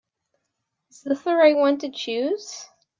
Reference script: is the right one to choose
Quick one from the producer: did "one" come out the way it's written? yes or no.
yes